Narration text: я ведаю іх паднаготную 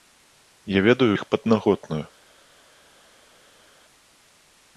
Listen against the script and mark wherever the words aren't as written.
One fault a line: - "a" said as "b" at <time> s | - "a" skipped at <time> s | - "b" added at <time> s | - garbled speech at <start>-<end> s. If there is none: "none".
none